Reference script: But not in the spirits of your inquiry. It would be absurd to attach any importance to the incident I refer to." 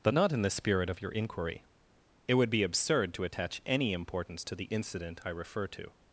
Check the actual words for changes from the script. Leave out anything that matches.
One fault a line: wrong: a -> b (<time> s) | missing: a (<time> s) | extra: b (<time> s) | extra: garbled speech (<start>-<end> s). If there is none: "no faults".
wrong: spirits -> spirit (0.5 s)